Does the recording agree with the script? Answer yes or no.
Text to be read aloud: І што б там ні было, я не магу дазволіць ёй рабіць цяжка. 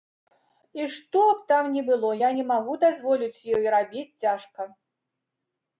yes